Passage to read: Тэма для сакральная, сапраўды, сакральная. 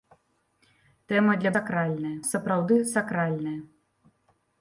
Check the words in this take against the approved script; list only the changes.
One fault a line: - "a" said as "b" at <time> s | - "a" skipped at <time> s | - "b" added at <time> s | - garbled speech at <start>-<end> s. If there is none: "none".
none